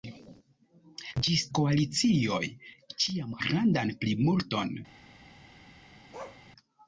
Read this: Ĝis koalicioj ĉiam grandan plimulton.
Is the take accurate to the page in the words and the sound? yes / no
no